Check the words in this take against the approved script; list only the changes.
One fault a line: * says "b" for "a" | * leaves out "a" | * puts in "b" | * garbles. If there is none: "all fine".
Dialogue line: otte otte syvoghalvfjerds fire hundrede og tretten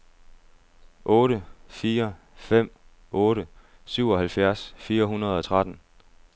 * puts in "fire fem"